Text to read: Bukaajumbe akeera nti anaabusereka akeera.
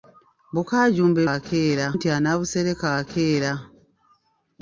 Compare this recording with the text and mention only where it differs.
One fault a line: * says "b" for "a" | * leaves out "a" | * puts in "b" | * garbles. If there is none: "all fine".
all fine